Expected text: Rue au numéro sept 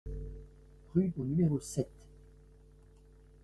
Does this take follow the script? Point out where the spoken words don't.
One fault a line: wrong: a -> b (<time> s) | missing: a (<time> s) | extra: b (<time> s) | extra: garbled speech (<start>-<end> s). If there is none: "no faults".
no faults